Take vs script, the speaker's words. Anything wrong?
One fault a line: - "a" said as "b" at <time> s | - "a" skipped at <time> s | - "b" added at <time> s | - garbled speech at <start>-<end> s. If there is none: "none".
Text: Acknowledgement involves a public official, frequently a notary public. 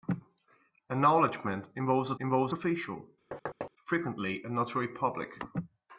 - "public" said as "involves" at 2.2 s